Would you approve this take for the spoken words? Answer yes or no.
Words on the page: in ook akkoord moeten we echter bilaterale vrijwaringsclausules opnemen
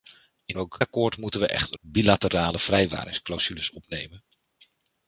yes